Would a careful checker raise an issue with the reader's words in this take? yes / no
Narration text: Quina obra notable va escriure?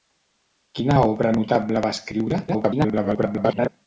yes